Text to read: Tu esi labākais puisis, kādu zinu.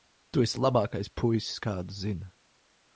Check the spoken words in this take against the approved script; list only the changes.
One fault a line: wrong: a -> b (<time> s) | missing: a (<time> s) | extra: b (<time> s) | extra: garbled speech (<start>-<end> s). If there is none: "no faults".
no faults